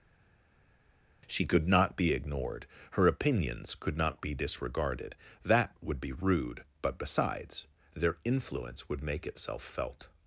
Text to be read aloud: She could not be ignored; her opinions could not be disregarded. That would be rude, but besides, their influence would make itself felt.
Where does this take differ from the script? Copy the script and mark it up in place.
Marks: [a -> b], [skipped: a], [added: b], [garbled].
She could not be ignored; her opinions could not be disregarded. That would be rude, but besides, their influence would make itself felt.